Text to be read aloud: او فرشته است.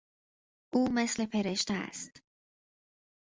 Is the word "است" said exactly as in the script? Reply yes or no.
yes